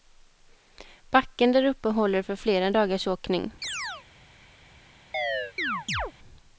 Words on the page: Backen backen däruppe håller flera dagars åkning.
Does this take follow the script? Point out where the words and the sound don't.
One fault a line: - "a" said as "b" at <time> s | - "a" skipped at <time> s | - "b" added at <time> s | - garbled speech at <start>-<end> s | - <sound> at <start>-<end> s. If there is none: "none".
- "backen" skipped at 1.5 s
- "för" added at 2.2 s
- chirp at 3.6-4.1 s
- chirp at 5.1-6.1 s